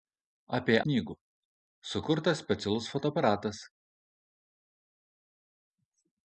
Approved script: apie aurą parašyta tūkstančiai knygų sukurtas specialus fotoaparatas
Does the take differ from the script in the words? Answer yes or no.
yes